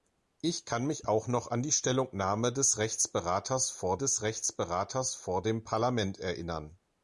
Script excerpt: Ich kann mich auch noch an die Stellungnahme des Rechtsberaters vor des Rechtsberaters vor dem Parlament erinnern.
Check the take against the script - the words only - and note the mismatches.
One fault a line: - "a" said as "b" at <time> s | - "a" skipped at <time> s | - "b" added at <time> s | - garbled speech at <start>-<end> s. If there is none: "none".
none